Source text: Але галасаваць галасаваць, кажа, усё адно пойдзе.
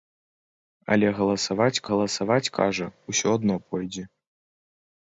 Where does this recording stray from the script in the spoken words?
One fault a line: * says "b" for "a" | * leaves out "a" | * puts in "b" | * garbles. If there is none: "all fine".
all fine